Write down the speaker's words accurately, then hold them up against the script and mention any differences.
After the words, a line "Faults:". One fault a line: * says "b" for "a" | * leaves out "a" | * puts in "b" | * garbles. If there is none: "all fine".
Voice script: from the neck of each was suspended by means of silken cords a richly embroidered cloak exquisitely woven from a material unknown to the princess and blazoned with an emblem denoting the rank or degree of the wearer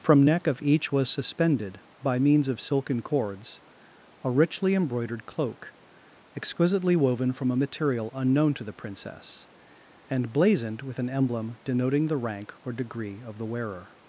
from neck of each was suspended by means of silken cords a richly embroidered cloak exquisitely woven from a material unknown to the princess and blazoned with an emblem denoting the rank or degree of the wearer
Faults:
* leaves out "the"